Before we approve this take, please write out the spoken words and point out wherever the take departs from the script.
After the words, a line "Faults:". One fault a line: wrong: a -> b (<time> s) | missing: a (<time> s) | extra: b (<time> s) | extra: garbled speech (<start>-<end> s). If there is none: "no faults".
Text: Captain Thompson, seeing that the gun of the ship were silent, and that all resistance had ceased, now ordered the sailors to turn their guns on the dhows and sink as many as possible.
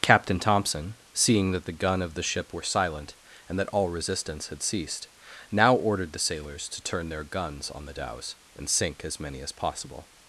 Captain Thompson, seeing that the gun of the ship were silent, and that all resistance had ceased, now ordered the sailors to turn their guns on the dhows and sink as many as possible.
Faults:
no faults